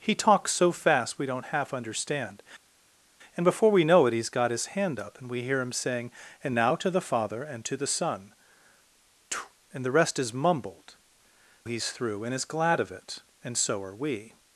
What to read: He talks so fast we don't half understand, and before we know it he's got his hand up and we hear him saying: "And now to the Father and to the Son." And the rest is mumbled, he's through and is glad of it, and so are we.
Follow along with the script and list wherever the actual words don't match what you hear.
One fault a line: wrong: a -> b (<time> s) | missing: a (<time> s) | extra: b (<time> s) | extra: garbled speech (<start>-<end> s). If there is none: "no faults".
no faults